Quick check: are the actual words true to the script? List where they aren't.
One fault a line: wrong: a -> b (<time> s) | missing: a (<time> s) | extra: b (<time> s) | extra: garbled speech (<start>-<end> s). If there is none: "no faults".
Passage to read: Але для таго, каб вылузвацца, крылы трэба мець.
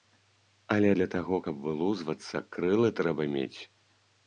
no faults